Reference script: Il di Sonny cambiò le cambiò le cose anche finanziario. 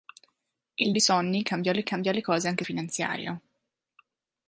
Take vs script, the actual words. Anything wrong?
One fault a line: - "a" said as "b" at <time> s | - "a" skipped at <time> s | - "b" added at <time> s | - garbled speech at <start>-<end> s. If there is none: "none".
none